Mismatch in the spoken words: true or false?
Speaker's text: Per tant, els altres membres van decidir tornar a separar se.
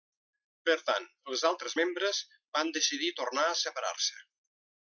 false